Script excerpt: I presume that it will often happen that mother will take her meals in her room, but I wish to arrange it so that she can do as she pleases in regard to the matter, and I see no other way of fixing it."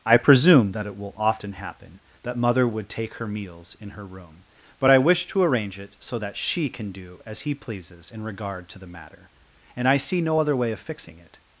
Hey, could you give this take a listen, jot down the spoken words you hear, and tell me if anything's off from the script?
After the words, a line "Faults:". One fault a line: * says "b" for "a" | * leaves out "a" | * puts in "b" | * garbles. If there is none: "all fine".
I presume that it will often happen that mother would take her meals in her room, but I wish to arrange it so that she can do as he pleases in regard to the matter, and I see no other way of fixing it."
Faults:
* says "would" for "will"
* says "he" for "she"